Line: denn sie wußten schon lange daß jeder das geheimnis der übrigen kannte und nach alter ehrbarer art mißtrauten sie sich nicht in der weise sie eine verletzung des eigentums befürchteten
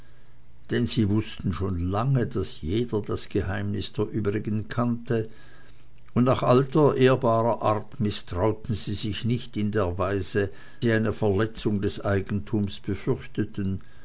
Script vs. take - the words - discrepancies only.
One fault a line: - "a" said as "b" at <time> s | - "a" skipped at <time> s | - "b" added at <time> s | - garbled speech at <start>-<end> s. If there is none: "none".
none